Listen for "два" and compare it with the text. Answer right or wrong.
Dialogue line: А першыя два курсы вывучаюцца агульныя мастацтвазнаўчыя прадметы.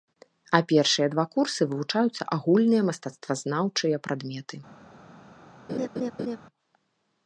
right